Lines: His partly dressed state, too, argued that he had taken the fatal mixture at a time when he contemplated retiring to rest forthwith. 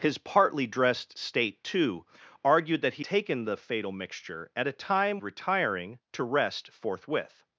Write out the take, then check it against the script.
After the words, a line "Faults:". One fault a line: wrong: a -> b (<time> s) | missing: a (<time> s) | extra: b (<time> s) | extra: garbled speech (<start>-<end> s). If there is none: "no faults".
His partly dressed state, too, argued that he taken the fatal mixture at a time retiring to rest forthwith.
Faults:
missing: had (3.0 s)
missing: when he contemplated (5.2 s)